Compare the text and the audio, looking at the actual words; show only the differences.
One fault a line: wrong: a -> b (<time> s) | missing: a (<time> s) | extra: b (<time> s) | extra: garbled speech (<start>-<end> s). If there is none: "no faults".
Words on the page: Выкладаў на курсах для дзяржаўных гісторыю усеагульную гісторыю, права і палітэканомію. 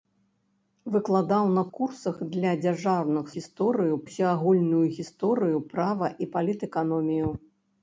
no faults